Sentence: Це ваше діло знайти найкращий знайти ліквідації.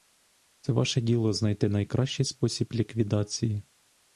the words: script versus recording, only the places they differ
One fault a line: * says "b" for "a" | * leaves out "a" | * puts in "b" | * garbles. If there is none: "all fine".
* says "спосіб" for "знайти"